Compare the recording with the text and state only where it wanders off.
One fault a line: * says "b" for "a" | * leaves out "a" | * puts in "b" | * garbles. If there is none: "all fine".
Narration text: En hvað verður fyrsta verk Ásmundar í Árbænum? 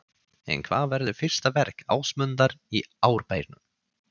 all fine